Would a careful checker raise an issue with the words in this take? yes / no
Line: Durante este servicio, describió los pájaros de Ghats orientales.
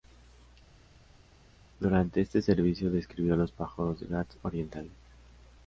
no